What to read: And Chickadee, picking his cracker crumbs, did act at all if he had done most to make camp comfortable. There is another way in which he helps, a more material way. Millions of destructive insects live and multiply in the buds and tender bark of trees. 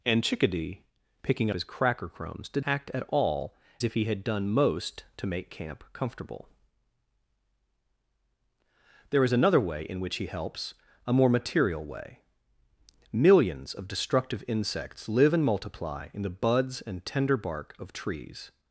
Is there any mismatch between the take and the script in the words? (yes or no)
no